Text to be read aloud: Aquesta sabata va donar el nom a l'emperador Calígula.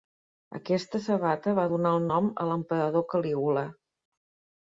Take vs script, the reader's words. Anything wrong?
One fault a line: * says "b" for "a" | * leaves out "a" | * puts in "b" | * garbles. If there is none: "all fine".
all fine